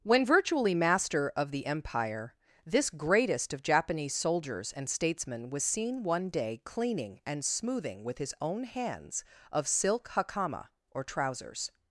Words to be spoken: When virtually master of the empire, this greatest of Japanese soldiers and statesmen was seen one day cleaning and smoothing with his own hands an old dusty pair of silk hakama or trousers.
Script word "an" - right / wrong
wrong